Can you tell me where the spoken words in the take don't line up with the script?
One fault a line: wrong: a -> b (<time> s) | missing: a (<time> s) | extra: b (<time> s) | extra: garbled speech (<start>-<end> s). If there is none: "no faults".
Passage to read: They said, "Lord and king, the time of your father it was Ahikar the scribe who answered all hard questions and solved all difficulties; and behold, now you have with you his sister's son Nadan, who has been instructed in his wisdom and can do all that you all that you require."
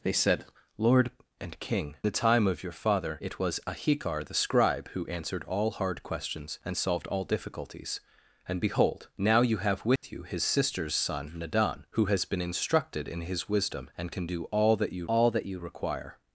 no faults